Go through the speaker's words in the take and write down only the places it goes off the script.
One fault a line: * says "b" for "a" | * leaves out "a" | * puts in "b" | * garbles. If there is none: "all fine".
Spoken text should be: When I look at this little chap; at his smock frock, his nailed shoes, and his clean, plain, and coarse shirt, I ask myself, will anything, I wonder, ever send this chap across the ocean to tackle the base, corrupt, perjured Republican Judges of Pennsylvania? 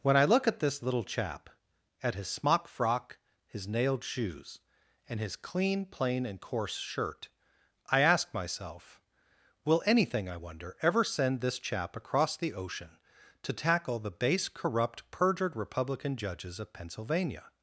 all fine